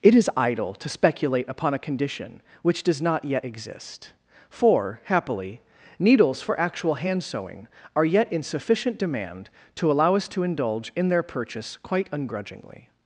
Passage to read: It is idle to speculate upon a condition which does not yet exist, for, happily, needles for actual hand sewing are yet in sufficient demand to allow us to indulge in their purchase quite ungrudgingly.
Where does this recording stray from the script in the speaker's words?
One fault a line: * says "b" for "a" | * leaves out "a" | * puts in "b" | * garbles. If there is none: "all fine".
all fine